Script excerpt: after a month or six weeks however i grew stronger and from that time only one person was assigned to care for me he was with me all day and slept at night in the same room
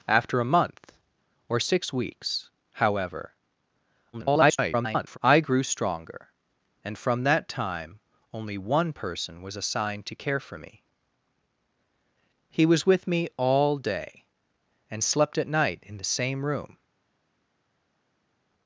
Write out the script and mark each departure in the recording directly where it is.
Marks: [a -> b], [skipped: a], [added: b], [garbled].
after a month or six weeks however [garbled] i grew stronger and from that time only one person was assigned to care for me he was with me all day and slept at night in the same room